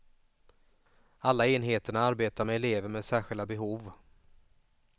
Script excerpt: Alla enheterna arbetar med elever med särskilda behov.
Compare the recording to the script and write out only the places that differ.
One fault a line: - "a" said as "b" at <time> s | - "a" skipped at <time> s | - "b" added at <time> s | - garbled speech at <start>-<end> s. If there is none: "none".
none